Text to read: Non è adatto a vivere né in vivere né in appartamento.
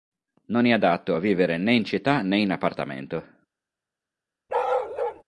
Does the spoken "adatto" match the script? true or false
true